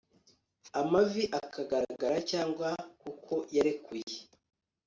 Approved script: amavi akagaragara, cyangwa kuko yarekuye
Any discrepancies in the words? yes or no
no